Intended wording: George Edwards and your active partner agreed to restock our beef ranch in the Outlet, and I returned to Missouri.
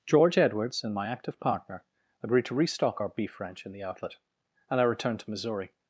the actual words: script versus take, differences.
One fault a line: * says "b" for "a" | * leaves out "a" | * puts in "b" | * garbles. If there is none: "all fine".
* says "my" for "your"